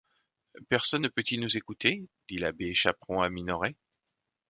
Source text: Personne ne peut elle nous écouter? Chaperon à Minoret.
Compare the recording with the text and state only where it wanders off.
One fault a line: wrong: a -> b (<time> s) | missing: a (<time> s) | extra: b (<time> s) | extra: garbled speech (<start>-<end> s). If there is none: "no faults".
wrong: elle -> il (1.3 s)
extra: dit l'abbé (2.3 s)